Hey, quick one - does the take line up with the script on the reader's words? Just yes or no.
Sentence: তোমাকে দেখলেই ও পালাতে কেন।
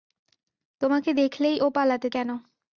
yes